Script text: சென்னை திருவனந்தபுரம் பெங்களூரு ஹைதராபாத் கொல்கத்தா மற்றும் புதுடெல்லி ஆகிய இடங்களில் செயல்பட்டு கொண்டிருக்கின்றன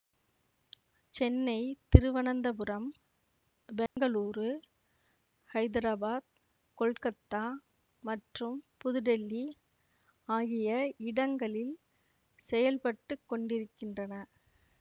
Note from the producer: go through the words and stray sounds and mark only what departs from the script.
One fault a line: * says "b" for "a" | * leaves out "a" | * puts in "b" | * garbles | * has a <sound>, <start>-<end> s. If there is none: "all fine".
* has a dropout, 3.9-4.0 s